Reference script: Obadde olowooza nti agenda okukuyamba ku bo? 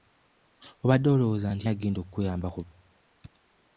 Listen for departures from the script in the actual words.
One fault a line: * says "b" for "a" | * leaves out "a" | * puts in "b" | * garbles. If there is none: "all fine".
all fine